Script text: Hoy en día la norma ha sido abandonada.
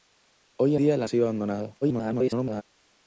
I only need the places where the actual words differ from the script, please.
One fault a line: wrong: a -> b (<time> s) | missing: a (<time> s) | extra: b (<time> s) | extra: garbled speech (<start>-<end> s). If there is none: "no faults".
missing: en (0.8 s)
missing: norma (1.1 s)
extra: garbled speech (1.8-2.6 s)